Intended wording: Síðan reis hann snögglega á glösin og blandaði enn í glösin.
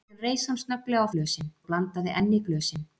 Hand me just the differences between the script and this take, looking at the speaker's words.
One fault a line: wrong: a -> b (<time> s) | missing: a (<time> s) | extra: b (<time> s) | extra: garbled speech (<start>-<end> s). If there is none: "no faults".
no faults